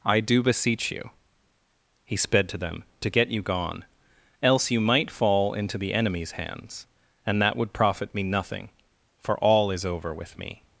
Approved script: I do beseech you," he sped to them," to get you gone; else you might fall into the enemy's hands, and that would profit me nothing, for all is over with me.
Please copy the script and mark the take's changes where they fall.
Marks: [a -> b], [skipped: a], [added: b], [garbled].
I do beseech you," he sped to them," to get you gone; else you might fall into the enemy's hands, and that would profit me nothing, for all is over with me.